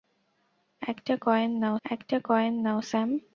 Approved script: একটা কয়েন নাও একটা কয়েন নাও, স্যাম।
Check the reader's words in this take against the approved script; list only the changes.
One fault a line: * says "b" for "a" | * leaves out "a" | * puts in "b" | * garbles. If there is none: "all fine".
all fine